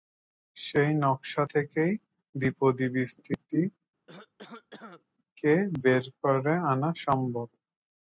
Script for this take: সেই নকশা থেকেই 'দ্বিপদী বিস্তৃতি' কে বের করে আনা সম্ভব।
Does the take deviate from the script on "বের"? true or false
false